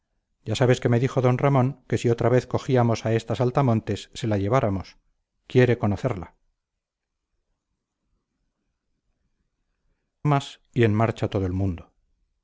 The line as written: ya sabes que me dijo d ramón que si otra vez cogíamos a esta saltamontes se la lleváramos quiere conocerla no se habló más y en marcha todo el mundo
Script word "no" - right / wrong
wrong